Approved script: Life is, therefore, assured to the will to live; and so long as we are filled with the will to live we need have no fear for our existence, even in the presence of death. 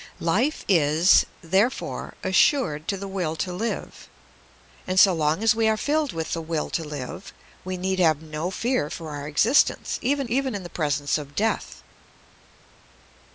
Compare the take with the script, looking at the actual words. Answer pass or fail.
fail